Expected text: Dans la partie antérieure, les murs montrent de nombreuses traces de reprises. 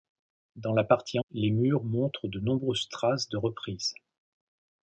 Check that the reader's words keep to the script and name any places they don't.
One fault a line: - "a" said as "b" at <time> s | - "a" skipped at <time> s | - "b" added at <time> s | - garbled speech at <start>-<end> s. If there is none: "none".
- "antérieure" skipped at 1.2 s